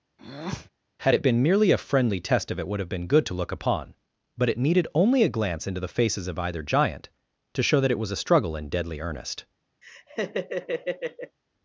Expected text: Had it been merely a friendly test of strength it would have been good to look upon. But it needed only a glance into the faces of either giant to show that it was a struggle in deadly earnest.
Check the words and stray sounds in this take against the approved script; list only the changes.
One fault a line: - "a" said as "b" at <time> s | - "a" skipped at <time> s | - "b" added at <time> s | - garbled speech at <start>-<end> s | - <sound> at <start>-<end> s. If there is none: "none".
- breath at 0.2-0.7 s
- "strength" skipped at 2.6 s
- laugh at 9.8-11.4 s